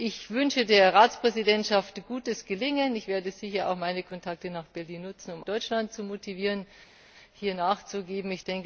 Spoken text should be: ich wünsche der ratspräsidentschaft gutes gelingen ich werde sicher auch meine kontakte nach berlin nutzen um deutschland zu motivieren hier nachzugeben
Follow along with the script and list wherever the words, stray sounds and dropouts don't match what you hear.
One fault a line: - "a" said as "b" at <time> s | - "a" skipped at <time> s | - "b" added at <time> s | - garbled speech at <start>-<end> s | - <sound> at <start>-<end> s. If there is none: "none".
none